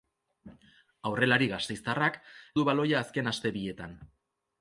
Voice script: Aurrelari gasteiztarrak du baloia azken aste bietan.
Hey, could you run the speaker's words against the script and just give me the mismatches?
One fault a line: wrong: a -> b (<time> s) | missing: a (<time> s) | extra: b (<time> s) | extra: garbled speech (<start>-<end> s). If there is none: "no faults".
no faults